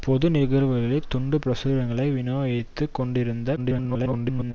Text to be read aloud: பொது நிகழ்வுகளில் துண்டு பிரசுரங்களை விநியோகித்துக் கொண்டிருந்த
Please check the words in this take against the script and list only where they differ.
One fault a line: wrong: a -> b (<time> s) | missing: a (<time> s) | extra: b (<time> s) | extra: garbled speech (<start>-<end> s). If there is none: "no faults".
extra: garbled speech (3.6-4.5 s)